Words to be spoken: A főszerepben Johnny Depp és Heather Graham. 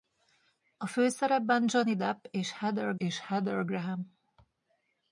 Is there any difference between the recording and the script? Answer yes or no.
yes